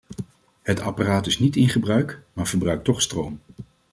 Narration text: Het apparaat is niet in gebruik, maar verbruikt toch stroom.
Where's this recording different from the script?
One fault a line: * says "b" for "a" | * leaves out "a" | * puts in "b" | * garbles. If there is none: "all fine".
all fine